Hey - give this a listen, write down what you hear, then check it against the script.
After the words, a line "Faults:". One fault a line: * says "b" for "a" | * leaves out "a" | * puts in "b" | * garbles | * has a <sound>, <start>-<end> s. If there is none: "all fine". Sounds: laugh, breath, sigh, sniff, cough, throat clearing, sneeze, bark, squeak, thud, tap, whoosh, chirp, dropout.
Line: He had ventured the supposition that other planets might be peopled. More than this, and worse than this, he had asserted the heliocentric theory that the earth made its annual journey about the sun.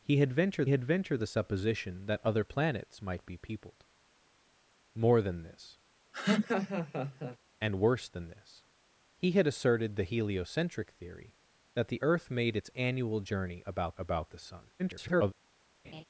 He had ventured had ventured the supposition that other planets might be peopled. More than this, and worse than this, he had asserted the heliocentric theory that the earth made its annual journey about about the sun. [garbled]
Faults:
* puts in "had ventured"
* has a laugh, 6.1-7.4 s
* puts in "about"
* garbles
* has a laugh, 15.8-16.0 s